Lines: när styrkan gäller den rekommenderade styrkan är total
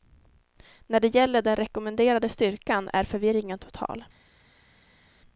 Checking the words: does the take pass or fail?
fail